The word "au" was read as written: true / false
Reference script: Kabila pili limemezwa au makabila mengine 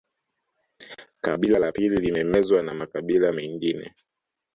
false